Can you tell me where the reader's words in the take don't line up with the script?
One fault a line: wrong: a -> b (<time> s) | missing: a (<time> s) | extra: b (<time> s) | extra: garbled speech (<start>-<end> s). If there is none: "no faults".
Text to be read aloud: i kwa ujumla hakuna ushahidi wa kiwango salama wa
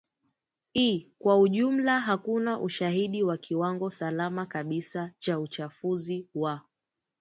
extra: kabisa cha uchafuzi (4.5 s)